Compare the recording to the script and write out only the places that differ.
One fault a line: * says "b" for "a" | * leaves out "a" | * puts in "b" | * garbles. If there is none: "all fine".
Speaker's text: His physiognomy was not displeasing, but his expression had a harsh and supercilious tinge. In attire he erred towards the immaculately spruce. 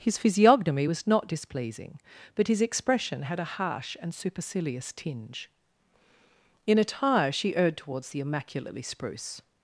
* says "she" for "he"